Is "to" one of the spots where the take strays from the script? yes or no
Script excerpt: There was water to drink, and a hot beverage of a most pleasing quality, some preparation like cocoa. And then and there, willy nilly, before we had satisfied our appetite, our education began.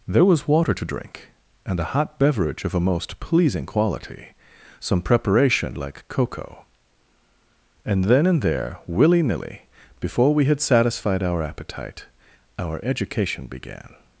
no